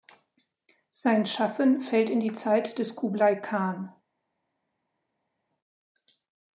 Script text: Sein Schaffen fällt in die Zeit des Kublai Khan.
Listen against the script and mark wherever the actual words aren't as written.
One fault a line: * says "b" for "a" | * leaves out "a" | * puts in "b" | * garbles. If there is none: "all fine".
all fine